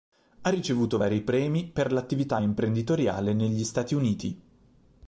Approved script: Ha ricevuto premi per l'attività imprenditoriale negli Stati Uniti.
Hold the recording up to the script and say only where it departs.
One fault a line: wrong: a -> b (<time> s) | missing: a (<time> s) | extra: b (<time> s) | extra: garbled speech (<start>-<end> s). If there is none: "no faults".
extra: vari (0.9 s)